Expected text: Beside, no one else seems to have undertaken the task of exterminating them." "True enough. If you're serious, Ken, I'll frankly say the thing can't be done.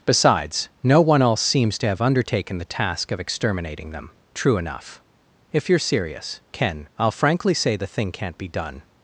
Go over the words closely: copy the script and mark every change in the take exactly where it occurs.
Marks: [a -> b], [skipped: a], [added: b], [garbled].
[Beside, -> Besides] no one else seems to have undertaken the task of exterminating them." "True enough. If you're serious, Ken, I'll frankly say the thing can't be done.